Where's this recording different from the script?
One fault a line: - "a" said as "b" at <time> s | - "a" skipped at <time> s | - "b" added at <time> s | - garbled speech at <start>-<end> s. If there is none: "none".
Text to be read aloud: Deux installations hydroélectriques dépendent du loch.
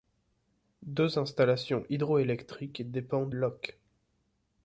- "du" skipped at 3.4 s